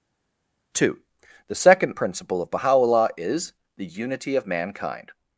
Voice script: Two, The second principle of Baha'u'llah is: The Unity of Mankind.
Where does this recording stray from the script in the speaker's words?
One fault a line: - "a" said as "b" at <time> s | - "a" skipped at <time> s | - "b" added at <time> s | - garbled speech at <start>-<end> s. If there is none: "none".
none